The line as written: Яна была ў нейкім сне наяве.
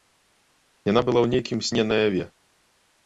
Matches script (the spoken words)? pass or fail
pass